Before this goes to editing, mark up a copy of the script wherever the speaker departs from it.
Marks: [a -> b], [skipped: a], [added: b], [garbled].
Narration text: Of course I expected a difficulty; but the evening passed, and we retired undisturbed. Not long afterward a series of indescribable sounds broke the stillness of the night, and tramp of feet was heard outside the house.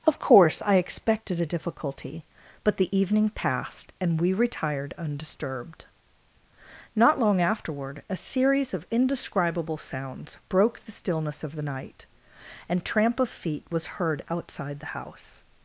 Of course I expected a difficulty; but the evening passed, and we retired undisturbed. Not long afterward a series of indescribable sounds broke the stillness of the night, and tramp of feet was heard outside the house.